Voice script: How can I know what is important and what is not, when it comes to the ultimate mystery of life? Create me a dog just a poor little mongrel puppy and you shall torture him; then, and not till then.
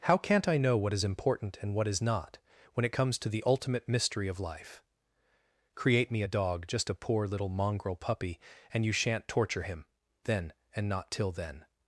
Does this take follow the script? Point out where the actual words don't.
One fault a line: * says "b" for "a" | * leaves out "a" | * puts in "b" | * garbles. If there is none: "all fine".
* says "can't" for "can"
* says "shan't" for "shall"